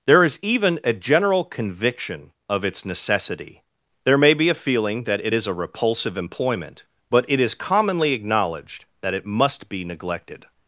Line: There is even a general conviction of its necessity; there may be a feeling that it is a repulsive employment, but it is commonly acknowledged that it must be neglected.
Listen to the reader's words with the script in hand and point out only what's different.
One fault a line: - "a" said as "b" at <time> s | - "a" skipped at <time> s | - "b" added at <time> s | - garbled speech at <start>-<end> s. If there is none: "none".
none